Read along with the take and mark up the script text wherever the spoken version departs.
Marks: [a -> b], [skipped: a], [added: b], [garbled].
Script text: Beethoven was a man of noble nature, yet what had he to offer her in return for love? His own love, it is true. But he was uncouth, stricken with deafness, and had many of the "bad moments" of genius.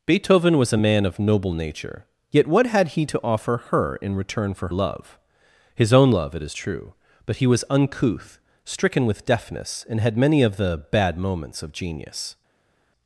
Beethoven was a man of noble nature, yet what had he to offer her in return for love? His own love, it is true. But he was uncouth, stricken with deafness, and had many of the "bad moments" of genius.